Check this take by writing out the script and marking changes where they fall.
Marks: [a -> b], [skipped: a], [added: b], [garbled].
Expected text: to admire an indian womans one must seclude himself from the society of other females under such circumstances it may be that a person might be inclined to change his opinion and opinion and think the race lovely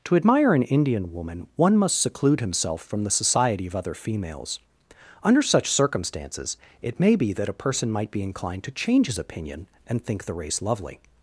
to admire an indian [womans -> woman] one must seclude himself from the society of other females under such circumstances it may be that a person might be inclined to change his opinion and [skipped: opinion and] think the race lovely